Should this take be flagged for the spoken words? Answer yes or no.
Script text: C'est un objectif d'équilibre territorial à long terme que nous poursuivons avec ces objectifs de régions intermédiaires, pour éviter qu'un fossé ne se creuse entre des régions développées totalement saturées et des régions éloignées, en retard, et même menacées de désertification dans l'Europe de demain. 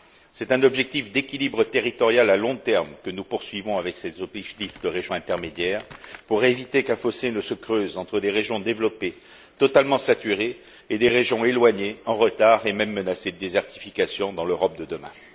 no